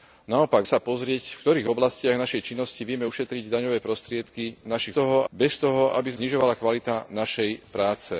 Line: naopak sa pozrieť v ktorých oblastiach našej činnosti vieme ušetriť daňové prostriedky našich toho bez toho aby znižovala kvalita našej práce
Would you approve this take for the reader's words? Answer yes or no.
yes